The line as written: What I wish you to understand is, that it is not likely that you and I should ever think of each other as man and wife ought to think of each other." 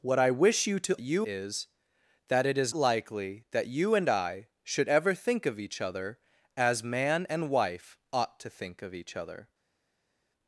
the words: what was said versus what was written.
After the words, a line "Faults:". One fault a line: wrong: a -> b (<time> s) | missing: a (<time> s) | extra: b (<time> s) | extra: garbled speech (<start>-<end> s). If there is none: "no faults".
What I wish you to you is, that it is likely that you and I should ever think of each other as man and wife ought to think of each other."
Faults:
wrong: understand -> you (1.0 s)
missing: not (2.7 s)